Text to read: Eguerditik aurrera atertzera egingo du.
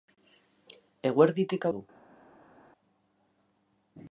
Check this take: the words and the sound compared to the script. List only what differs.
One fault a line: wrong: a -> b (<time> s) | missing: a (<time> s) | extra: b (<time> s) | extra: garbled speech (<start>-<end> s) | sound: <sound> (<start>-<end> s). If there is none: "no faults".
missing: aurrera atertzera egingo (1.7 s)